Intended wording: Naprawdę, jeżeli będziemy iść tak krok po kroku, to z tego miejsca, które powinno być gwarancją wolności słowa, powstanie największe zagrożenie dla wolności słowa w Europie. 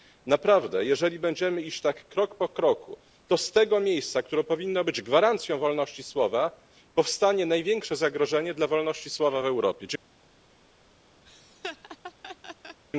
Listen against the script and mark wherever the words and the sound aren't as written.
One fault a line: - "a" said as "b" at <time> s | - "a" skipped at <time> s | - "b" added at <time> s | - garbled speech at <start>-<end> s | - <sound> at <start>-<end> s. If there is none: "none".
- laugh at 11.2-12.8 s